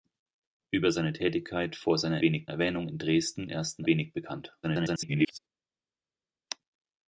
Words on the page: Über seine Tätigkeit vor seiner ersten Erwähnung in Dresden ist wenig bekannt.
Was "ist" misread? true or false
true